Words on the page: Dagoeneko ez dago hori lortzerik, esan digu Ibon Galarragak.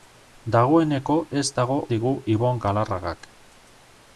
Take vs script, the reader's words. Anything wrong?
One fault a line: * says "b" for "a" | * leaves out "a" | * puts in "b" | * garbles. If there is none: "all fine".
* leaves out "hori lortzerik esan"